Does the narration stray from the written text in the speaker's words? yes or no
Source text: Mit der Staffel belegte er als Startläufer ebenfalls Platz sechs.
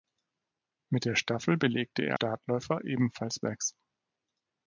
yes